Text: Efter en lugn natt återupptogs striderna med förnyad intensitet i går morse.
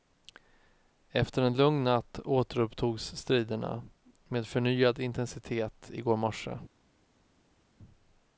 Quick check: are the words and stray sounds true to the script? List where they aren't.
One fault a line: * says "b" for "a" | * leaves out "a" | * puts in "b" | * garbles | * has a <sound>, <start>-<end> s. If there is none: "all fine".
all fine